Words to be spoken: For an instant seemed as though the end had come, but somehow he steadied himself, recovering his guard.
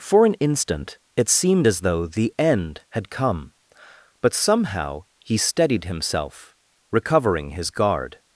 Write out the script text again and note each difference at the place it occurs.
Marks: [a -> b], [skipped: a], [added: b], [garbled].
For an instant [added: it] seemed as though the end had come, but somehow he steadied himself, recovering his guard.